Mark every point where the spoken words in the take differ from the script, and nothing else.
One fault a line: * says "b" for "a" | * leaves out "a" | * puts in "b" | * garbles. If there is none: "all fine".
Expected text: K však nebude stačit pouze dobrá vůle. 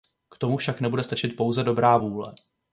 * puts in "tomu"